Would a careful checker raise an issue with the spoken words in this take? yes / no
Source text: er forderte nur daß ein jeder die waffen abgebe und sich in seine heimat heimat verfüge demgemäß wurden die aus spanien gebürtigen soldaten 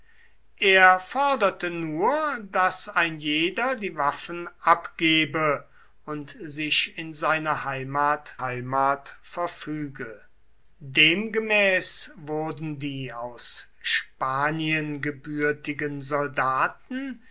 no